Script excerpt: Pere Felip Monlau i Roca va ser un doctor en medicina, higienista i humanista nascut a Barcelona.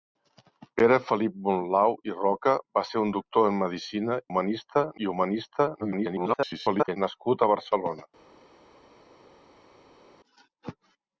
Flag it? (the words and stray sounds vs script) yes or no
yes